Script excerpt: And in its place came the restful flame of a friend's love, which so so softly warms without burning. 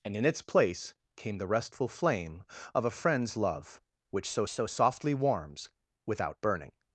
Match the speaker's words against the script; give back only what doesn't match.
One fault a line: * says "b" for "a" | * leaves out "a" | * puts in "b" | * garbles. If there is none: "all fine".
all fine